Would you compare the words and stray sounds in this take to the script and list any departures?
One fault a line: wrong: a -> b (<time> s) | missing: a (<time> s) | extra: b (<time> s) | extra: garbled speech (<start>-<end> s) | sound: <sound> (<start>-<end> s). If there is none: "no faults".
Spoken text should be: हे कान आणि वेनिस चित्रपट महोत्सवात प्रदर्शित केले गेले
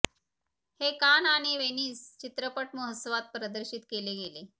no faults